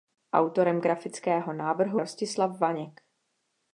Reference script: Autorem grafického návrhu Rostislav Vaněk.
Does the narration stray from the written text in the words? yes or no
no